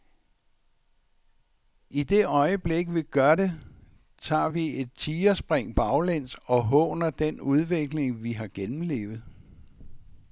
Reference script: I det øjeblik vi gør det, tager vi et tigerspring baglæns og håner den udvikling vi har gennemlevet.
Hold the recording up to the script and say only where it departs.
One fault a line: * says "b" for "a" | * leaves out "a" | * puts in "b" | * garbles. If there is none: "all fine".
all fine